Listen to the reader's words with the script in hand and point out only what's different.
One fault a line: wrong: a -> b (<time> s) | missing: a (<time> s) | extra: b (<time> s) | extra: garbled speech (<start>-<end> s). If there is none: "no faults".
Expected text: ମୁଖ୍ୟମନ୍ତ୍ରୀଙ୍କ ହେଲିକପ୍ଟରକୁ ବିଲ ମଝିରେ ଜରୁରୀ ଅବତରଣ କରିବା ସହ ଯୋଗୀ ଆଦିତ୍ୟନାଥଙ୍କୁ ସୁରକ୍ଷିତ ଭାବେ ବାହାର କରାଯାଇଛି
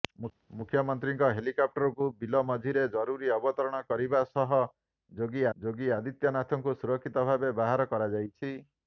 extra: ଯୋଗୀ (5.6 s)